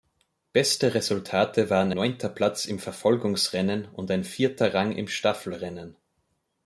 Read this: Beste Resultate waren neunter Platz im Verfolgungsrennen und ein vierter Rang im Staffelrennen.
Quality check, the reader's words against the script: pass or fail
pass